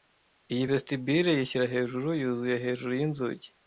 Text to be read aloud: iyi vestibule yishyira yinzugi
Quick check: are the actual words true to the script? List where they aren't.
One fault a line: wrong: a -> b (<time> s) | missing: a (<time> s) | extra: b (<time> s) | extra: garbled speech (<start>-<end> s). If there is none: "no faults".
extra: hejuru yuzuye hejuru (1.7 s)